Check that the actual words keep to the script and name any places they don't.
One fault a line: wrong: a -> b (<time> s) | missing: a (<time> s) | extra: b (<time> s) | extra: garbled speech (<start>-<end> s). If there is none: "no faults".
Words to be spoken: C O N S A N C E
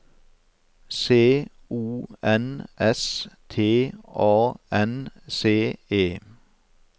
extra: T (3.5 s)